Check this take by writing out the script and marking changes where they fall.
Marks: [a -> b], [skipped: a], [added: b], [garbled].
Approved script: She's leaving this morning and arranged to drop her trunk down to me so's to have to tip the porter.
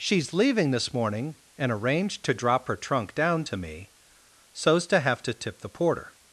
She's leaving this morning and arranged to drop her trunk down to me so's to have to tip the porter.